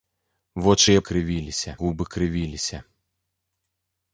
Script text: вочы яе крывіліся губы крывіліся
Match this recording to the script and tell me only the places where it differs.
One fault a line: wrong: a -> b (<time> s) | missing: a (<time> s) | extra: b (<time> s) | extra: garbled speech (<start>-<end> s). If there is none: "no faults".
no faults